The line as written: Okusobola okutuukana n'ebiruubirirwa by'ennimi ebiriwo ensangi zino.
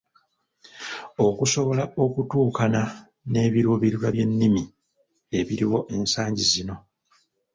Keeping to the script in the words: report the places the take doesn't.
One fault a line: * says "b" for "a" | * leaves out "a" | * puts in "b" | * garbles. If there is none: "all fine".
all fine